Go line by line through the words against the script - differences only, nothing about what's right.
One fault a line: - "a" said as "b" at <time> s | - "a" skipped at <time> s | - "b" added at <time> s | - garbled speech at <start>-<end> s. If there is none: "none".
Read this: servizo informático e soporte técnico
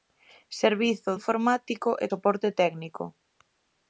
none